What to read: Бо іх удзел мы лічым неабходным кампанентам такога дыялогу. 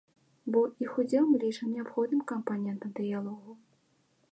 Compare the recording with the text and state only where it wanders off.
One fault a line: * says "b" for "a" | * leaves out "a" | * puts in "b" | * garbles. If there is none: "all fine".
* leaves out "такога"